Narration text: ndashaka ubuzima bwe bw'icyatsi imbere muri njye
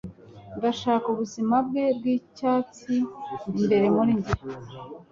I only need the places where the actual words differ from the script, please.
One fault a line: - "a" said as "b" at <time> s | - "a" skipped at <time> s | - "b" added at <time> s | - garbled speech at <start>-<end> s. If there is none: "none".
none